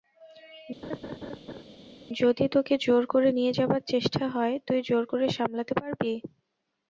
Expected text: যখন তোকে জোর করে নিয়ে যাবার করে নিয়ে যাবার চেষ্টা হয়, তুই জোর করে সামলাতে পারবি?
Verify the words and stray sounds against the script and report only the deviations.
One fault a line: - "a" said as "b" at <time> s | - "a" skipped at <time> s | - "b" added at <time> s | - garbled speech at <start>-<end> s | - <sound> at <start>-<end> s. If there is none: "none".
- laugh at 0.8-1.6 s
- "যখন" said as "যদি" at 2.2 s
- "করে নিয়ে যাবার" skipped at 3.8 s